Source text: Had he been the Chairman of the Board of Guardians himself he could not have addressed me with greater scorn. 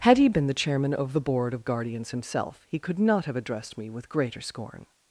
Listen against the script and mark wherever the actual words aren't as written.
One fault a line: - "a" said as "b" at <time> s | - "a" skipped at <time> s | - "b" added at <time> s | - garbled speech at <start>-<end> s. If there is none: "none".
none